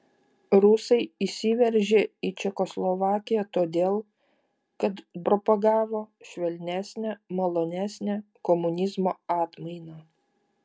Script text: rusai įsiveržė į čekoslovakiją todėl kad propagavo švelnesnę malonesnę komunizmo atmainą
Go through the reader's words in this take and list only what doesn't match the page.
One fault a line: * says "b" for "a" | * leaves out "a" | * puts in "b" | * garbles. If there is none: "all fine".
all fine